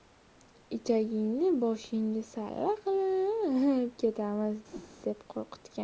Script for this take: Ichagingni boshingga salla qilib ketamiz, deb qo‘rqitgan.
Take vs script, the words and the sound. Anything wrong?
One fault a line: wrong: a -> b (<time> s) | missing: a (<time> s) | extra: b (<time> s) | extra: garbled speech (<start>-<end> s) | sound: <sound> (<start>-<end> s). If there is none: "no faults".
sound: whoosh (4.7-5.0 s)